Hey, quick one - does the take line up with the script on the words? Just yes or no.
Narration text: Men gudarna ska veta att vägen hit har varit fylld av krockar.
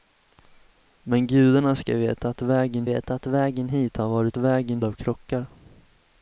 no